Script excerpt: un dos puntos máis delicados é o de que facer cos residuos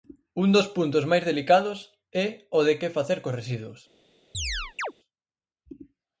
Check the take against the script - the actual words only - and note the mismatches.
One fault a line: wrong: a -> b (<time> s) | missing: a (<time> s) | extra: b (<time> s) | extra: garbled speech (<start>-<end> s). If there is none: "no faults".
no faults